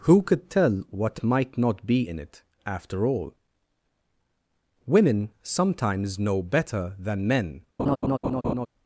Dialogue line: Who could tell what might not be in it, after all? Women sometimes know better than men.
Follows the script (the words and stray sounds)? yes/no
no